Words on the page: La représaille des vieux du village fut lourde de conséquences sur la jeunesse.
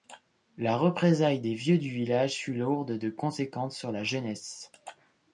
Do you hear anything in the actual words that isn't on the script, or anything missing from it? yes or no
no